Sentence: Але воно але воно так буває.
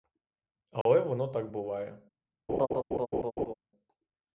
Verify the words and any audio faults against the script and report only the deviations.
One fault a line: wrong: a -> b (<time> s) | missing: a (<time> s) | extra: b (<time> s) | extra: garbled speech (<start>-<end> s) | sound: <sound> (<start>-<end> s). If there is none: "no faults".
sound: dropout (0.8-0.9 s)
missing: але воно (1.3 s)
sound: laugh (2.5-3.5 s)